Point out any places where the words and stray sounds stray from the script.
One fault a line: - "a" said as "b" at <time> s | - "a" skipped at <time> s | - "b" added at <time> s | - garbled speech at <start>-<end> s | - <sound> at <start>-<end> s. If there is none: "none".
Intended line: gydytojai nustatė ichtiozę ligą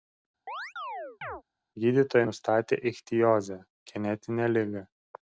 - chirp at 0.5-1.4 s
- "genetinę" added at 3.9 s